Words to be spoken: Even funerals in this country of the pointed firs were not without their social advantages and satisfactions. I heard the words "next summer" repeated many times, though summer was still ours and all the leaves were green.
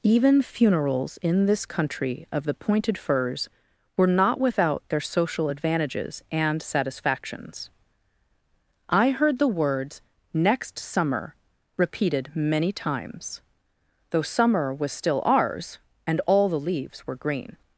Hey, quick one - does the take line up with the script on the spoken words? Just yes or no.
yes